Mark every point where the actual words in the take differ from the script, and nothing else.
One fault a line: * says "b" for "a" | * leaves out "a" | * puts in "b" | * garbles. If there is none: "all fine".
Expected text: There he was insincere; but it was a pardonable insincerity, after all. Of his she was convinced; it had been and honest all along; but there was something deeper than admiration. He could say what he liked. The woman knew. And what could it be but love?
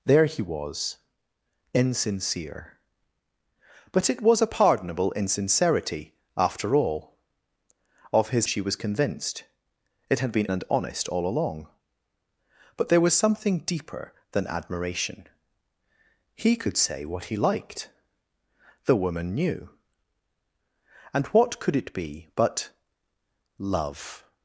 all fine